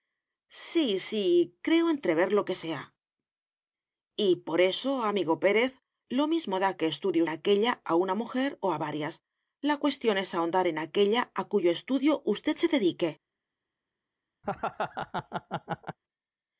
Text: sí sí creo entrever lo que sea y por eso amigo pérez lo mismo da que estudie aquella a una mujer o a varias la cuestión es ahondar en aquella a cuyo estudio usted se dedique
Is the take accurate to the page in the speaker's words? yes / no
yes